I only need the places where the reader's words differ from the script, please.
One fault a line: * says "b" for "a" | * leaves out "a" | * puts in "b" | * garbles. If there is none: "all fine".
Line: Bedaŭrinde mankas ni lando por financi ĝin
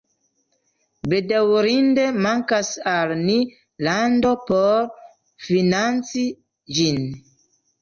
* puts in "al"